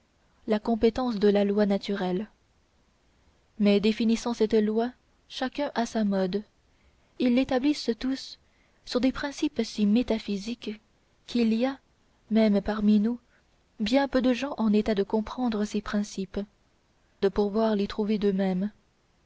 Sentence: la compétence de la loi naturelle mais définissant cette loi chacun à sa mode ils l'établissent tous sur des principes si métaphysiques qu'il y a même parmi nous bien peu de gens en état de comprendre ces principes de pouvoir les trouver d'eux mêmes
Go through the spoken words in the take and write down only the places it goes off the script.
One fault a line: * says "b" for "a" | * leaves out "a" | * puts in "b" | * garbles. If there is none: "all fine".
all fine